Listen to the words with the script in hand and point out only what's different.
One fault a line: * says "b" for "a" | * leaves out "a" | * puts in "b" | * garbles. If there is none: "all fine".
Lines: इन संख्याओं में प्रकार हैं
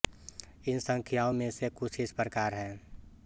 * puts in "से कुछ इस"